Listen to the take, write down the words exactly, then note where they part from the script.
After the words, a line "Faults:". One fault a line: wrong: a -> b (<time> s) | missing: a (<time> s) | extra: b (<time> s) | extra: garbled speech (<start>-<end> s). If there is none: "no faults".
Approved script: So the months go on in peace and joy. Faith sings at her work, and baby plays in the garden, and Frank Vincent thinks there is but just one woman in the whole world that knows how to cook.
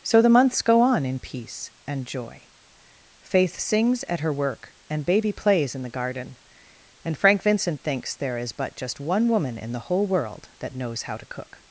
So the months go on in peace and joy. Faith sings at her work, and baby plays in the garden, and Frank Vincent thinks there is but just one woman in the whole world that knows how to cook.
Faults:
no faults